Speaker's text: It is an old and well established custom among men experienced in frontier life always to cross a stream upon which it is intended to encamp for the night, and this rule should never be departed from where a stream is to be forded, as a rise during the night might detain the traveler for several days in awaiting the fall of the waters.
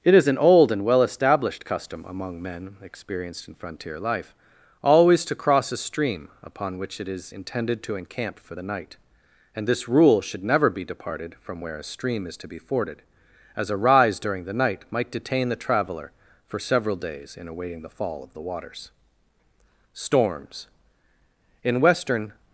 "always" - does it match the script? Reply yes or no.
yes